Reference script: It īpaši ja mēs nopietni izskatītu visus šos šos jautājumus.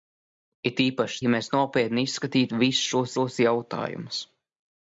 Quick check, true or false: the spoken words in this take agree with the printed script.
true